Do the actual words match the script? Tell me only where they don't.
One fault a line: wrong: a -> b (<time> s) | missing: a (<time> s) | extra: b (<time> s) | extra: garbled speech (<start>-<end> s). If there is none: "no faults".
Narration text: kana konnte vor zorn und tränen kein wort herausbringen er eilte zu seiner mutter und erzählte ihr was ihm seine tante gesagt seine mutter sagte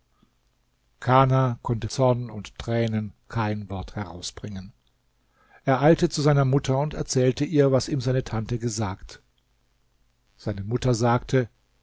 missing: vor (1.9 s)